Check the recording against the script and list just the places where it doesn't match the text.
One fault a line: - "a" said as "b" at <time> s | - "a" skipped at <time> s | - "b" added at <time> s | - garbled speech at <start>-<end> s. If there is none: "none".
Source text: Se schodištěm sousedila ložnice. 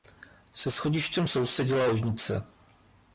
none